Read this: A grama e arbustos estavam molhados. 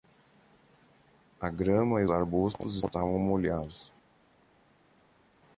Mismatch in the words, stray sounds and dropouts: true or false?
false